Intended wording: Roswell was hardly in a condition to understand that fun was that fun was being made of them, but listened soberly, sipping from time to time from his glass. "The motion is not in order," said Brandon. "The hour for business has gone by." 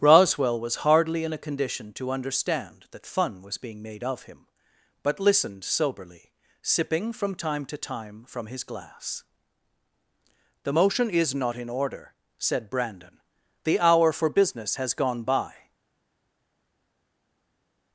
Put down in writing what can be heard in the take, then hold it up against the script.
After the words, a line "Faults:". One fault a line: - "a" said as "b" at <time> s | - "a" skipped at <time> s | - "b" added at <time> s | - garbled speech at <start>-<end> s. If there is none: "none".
Roswell was hardly in a condition to understand that fun was being made of him, but listened soberly, sipping from time to time from his glass. "The motion is not in order," said Brandon. "The hour for business has gone by."
Faults:
- "that fun was" skipped at 3.6 s
- "them" said as "him" at 4.2 s